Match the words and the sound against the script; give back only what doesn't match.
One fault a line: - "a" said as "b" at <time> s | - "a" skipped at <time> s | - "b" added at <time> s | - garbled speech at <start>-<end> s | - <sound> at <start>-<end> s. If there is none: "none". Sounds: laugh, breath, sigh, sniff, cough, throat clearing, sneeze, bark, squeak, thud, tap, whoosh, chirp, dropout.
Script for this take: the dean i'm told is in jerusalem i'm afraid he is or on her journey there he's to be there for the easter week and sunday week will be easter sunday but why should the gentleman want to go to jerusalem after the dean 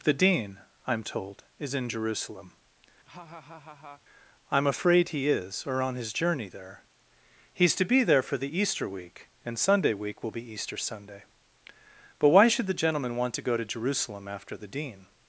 - laugh at 3.0-4.0 s
- "her" said as "his" at 5.9 s